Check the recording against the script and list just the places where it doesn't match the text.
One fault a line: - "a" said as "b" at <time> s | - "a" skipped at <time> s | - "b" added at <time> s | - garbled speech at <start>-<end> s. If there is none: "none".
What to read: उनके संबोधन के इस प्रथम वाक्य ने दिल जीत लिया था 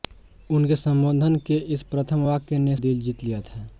none